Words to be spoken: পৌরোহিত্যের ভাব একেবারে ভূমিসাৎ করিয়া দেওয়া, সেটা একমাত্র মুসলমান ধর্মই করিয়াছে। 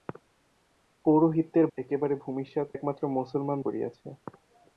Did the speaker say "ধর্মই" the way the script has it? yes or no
no